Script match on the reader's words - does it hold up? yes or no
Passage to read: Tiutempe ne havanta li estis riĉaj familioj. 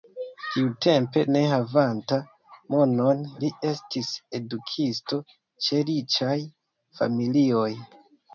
no